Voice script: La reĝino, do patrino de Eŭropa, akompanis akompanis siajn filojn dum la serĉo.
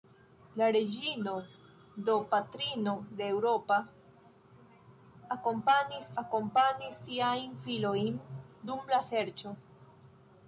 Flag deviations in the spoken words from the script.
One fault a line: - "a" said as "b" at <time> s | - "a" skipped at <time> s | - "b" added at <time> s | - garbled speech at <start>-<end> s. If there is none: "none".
none